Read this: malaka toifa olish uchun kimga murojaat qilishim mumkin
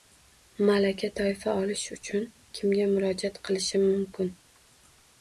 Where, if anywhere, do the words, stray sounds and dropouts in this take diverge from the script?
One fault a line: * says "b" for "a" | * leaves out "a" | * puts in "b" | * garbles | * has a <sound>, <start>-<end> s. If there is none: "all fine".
all fine